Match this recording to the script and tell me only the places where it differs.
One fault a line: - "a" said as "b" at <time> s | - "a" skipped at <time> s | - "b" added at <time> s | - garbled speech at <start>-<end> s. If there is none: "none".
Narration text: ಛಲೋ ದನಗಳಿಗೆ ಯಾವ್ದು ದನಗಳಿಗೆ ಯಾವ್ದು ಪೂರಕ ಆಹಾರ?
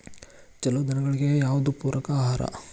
- "ದನಗಳಿಗೆ ಯಾವ್ದು" skipped at 1.7 s